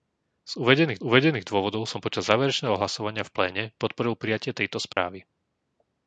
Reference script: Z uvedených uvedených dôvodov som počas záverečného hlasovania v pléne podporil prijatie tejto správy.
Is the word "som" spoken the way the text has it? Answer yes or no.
yes